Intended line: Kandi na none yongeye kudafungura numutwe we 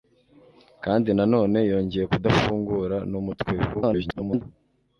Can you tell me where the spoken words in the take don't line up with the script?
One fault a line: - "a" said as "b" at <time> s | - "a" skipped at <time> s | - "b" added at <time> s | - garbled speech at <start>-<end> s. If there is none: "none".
- garbled speech at 3.7-4.4 s